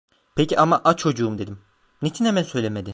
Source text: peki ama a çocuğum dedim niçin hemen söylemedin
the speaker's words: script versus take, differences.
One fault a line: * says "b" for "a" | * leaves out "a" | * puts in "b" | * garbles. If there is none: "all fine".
all fine